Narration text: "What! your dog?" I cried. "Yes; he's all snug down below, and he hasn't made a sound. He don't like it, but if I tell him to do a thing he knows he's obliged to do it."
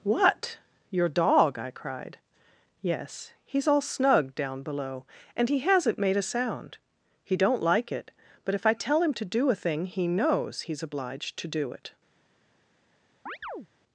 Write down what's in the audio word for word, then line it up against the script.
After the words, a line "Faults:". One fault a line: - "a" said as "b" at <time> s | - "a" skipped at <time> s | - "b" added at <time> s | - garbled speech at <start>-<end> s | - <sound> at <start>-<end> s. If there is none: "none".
"What! your dog?" I cried. "Yes; he's all snug down below, and he hasn't made a sound. He don't like it, but if I tell him to do a thing he knows he's obliged to do it."
Faults:
- chirp at 13.3-13.7 s